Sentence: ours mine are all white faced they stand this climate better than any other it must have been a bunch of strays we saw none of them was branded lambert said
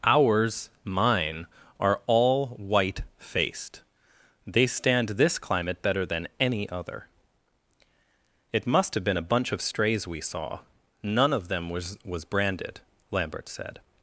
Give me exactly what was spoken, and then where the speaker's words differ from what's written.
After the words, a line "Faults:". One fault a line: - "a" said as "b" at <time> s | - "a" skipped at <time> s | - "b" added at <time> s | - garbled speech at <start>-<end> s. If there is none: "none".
ours mine are all white faced they stand this climate better than any other it must have been a bunch of strays we saw none of them was was branded lambert said
Faults:
- "was" added at 12.0 s